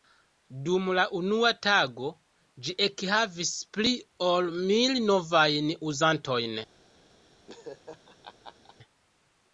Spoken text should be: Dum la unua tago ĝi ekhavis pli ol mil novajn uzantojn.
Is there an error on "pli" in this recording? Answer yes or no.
no